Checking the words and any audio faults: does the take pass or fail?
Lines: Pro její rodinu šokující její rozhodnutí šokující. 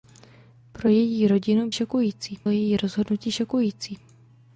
pass